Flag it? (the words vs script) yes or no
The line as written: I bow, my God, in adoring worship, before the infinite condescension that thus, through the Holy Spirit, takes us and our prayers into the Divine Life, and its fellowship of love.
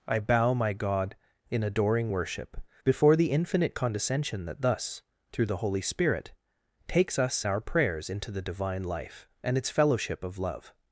yes